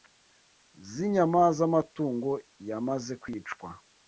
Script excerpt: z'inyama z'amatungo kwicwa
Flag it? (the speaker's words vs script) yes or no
yes